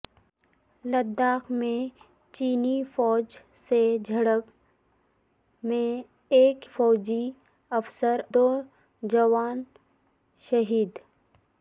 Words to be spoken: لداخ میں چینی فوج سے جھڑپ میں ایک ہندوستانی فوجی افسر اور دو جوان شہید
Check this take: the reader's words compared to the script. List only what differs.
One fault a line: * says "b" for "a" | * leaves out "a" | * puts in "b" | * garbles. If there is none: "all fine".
* leaves out "ہندوستانی"
* leaves out "اور"